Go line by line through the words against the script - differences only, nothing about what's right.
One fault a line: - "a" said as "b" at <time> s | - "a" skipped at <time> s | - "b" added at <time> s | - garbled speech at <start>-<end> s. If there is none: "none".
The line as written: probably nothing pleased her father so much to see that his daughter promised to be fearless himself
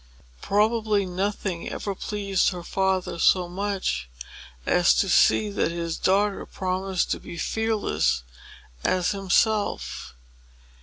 - "ever" added at 1.7 s
- "as" added at 4.7 s
- "as" added at 8.8 s